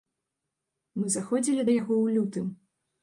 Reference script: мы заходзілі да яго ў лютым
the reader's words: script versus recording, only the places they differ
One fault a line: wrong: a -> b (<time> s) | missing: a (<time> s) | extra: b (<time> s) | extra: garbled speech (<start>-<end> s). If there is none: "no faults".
no faults